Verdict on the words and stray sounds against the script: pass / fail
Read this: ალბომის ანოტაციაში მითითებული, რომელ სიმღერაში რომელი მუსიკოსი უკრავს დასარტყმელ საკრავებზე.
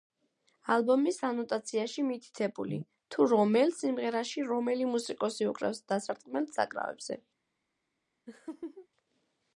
fail